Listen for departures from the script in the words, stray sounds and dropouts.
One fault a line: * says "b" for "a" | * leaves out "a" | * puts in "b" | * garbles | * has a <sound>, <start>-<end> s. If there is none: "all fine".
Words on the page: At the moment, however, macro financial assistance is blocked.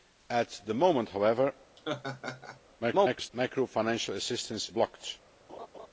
* has a laugh, 1.8-2.6 s
* garbles
* leaves out "is"
* has a laugh, 5.5-5.9 s